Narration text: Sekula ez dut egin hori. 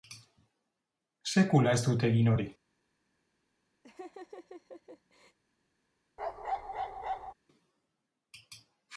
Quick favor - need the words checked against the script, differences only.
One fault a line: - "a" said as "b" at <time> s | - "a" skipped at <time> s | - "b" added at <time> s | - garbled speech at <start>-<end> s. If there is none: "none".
none